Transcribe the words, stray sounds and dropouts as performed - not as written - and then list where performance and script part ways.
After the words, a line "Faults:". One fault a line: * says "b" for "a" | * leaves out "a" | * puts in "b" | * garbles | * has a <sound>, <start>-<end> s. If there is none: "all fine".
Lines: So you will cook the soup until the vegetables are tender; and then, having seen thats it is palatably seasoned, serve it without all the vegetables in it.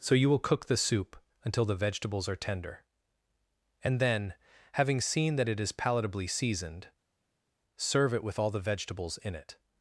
So you will cook the soup until the vegetables are tender; and then, having seen that it is palatably seasoned, serve it with all the vegetables in it.
Faults:
* says "that" for "thats"
* says "with" for "without"